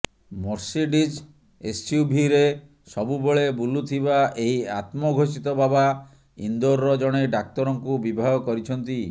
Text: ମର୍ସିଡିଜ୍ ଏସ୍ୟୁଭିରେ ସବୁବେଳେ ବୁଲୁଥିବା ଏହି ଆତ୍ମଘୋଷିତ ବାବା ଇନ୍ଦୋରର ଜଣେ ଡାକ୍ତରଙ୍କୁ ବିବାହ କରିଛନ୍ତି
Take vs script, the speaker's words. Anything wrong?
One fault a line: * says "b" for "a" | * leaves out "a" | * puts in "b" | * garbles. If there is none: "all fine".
all fine